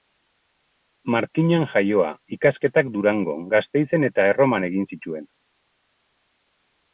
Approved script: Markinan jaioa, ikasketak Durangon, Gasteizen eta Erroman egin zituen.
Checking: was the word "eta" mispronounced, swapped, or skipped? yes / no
no